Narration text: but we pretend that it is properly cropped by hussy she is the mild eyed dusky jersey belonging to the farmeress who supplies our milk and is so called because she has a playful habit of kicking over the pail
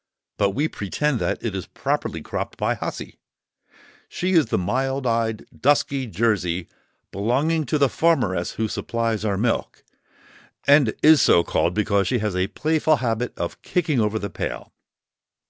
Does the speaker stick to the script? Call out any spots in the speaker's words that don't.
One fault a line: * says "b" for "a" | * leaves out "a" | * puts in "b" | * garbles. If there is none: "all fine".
all fine